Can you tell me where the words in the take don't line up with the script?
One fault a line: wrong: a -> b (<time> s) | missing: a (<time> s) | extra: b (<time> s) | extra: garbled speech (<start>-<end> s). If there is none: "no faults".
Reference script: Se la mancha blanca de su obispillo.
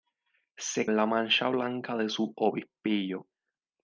no faults